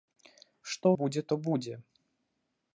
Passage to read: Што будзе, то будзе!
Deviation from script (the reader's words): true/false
false